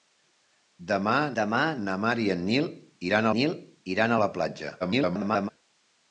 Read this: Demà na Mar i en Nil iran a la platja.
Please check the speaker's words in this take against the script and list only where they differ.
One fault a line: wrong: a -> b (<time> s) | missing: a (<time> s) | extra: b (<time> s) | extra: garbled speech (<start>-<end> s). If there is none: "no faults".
extra: demà (1.4 s)
extra: Nil iran (3.4 s)
extra: garbled speech (4.8-5.5 s)